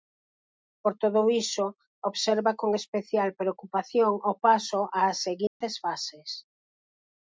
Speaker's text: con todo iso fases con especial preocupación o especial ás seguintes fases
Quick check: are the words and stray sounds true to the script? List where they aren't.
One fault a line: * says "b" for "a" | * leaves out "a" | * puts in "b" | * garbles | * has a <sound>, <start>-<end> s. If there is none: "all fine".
* says "por" for "con"
* says "observa" for "fases"
* says "paso" for "especial"
* has a dropout, 5.5-5.6 s